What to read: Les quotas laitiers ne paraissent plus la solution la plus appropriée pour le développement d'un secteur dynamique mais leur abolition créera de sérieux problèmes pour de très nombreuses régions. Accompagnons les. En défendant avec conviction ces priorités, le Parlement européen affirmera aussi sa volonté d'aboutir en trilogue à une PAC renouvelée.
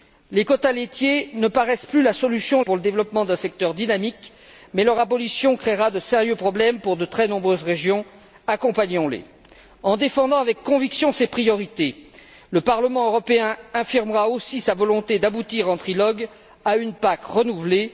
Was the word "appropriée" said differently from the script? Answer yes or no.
yes